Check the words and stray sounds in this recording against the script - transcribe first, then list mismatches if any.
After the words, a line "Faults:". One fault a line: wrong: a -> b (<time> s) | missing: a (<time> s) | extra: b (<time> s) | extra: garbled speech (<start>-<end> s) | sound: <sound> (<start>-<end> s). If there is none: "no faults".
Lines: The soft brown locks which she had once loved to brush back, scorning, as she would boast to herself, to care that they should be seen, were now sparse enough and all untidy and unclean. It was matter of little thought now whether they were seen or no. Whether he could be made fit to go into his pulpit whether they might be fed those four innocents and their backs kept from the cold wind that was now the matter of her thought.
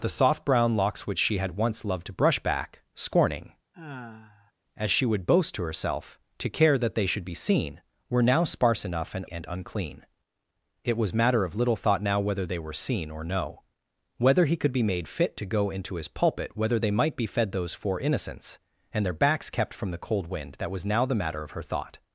The soft brown locks which she had once loved to brush back, scorning, as she would boast to herself, to care that they should be seen, were now sparse enough and and unclean. It was matter of little thought now whether they were seen or no. Whether he could be made fit to go into his pulpit whether they might be fed those four innocents and their backs kept from the cold wind that was now the matter of her thought.
Faults:
sound: sigh (3.7-4.5 s)
missing: all untidy (9.2 s)